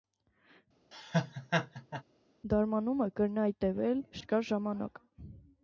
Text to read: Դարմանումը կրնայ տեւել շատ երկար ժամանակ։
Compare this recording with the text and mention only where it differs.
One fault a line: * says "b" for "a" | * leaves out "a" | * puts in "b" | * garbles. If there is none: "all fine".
* leaves out "շատ"